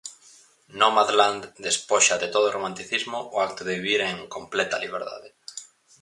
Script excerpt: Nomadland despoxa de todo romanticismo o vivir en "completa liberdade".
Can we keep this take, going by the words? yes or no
no